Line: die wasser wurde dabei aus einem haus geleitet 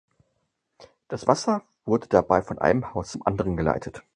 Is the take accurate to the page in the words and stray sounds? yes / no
no